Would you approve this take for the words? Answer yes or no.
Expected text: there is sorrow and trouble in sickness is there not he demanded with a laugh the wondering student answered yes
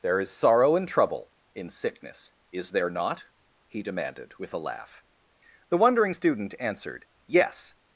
yes